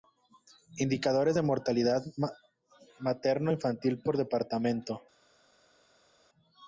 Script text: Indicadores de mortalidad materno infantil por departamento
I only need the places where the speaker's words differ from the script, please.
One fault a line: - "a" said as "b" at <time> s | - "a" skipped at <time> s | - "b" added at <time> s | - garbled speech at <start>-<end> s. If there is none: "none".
none